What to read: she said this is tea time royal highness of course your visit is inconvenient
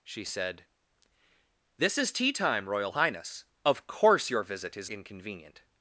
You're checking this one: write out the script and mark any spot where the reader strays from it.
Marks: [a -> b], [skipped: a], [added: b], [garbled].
she said this is tea time royal highness of course your visit is inconvenient